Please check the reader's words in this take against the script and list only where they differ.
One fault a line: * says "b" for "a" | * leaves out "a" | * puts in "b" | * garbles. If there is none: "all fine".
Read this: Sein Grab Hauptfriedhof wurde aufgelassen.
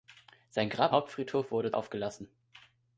all fine